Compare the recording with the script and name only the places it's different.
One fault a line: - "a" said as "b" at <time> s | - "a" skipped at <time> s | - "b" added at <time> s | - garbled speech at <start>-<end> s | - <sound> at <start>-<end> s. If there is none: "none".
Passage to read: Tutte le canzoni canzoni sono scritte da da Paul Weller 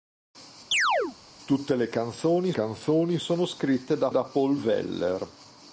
- chirp at 0.7-1.2 s